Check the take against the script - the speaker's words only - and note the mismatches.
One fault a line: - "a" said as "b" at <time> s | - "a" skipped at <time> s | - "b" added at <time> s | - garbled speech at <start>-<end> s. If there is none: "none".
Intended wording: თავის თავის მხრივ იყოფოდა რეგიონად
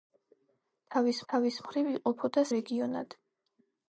none